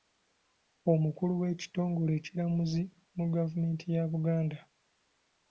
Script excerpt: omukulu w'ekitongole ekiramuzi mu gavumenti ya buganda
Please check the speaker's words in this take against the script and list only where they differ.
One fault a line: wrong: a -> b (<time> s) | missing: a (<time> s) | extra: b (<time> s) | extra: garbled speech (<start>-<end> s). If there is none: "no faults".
no faults